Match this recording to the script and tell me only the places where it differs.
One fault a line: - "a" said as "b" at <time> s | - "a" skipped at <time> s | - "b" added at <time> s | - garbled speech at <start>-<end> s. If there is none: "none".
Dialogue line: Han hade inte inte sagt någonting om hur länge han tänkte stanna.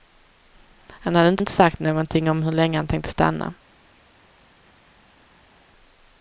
none